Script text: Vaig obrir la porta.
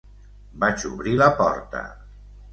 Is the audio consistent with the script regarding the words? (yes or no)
yes